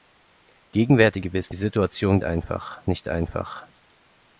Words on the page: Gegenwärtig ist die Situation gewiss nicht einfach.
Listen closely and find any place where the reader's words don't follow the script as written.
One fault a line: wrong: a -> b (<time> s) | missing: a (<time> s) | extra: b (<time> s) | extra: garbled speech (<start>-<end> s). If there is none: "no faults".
wrong: ist -> gewiss (1.2 s)
wrong: gewiss -> einfach (2.2 s)